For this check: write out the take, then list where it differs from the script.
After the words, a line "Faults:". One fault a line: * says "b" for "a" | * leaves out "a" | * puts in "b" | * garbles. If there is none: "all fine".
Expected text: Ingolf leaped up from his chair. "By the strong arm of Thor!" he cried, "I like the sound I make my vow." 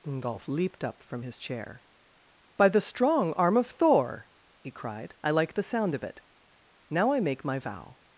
Ingolf leaped up from his chair. "By the strong arm of Thor!" he cried, "I like the sound of it. Now I make my vow."
Faults:
* puts in "of it Now"